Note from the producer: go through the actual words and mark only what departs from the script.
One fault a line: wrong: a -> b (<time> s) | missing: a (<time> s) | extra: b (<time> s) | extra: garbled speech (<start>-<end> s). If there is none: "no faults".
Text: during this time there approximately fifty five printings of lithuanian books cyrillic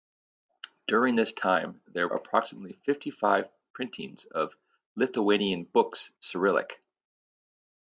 no faults